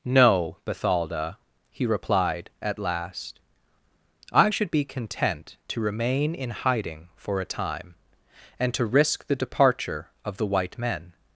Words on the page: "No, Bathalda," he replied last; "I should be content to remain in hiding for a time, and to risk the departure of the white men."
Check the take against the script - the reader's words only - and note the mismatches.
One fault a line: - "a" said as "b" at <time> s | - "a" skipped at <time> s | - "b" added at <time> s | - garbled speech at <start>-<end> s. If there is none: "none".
- "at" added at 2.6 s